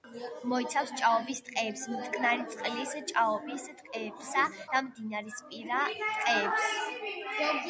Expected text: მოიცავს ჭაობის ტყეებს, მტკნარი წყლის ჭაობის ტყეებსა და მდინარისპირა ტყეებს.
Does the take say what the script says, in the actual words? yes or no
yes